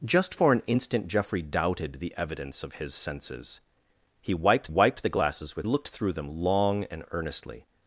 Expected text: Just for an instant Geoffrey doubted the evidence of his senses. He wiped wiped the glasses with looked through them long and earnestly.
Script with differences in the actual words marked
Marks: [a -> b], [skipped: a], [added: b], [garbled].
Just for an instant Geoffrey doubted the evidence of his senses. He wiped wiped the glasses with looked through them long and earnestly.